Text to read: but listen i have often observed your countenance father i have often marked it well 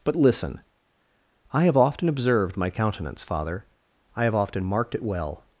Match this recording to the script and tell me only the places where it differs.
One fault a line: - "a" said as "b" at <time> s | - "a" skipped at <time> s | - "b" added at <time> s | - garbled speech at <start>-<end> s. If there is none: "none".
- "your" said as "my" at 2.6 s